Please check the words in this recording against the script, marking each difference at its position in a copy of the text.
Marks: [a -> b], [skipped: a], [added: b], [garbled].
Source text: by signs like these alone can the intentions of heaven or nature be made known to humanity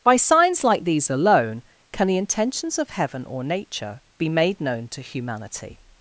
by signs like these alone can the intentions of heaven or nature be made known to humanity